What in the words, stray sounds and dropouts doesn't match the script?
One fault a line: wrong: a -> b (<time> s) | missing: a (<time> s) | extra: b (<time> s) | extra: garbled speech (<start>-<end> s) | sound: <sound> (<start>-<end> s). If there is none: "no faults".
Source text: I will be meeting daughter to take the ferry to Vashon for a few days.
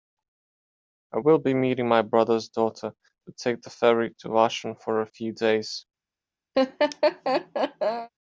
extra: my brother's (1.9 s)
sound: laugh (6.5-8.1 s)